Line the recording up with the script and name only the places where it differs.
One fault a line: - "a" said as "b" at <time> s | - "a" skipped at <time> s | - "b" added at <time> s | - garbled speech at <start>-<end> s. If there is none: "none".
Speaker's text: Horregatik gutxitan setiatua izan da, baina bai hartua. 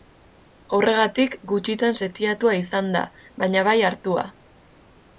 none